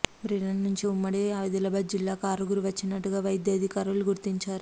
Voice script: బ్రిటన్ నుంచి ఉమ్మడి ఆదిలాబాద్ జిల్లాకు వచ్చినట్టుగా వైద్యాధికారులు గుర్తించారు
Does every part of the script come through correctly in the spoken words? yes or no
no